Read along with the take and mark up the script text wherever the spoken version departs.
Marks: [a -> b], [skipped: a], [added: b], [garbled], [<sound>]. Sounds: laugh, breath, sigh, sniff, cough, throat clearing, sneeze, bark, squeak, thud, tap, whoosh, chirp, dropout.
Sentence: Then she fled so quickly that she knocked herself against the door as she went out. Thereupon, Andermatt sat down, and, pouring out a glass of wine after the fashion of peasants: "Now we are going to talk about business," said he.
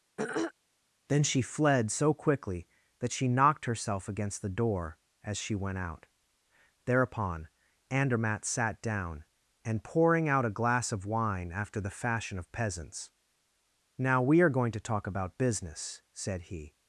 [throat clearing] Then she fled so quickly that she knocked herself against the door as she went out. Thereupon, Andermatt sat down, and, pouring out a glass of wine after the fashion of peasants: "Now we are going to talk about business," said he.